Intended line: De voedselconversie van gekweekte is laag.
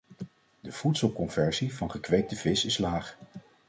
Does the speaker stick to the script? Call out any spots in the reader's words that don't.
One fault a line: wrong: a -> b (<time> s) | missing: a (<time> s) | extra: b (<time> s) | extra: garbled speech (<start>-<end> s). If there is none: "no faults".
extra: vis (2.3 s)